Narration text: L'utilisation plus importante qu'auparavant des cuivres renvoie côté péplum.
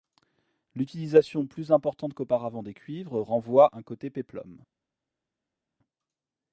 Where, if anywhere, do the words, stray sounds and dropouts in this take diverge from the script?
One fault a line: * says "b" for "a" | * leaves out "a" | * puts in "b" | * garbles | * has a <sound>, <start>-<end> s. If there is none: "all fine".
* puts in "un"